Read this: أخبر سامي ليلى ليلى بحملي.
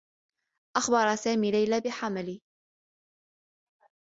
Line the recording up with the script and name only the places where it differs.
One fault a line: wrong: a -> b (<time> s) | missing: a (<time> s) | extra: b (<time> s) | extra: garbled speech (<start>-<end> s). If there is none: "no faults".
missing: ليلى (1.8 s)